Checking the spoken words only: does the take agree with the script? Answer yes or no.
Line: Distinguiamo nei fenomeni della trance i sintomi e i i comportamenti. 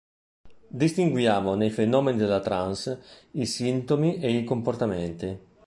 no